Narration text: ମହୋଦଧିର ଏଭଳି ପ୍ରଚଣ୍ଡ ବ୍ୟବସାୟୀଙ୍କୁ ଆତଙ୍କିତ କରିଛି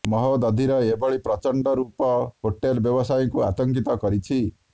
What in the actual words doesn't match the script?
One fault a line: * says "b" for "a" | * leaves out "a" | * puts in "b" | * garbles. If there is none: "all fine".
* puts in "ରୂପ ହୋଟେଲ"